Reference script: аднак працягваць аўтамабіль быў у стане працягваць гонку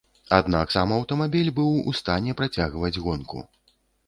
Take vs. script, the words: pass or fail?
fail